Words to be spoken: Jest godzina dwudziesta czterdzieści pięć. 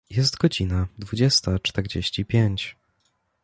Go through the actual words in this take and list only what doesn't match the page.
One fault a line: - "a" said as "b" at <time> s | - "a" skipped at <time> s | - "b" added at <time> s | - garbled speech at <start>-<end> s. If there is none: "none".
none